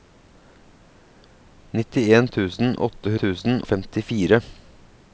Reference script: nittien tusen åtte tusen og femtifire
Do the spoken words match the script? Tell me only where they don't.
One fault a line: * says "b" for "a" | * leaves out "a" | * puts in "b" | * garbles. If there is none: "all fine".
all fine